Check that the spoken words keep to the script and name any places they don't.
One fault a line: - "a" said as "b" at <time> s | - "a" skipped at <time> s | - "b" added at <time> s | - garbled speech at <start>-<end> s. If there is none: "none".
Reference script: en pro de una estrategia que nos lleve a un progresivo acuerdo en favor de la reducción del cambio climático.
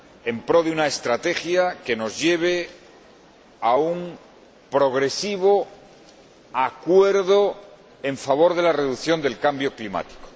none